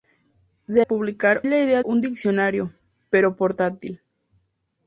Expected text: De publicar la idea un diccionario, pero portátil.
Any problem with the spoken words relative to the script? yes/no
no